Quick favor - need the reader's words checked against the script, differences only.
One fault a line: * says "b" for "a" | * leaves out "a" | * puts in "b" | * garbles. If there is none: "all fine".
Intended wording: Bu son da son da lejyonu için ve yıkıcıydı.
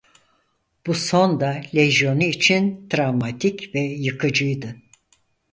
* leaves out "son da"
* puts in "travmatik"